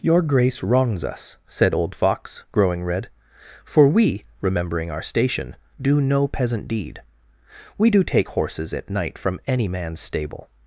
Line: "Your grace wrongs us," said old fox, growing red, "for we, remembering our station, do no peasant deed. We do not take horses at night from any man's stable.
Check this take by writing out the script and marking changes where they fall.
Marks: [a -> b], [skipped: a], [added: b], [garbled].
"Your grace wrongs us," said old fox, growing red, "for we, remembering our station, do no peasant deed. We do [skipped: not] take horses at night from any man's stable.